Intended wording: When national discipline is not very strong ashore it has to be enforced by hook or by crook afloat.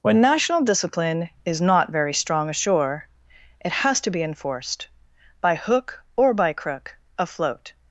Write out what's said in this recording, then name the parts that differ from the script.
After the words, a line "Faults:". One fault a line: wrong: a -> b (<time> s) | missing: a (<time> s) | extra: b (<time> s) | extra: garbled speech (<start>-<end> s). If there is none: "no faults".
When national discipline is not very strong ashore it has to be enforced by hook or by crook afloat.
Faults:
no faults